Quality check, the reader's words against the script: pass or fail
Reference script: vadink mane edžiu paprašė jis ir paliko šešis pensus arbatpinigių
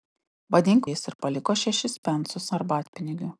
fail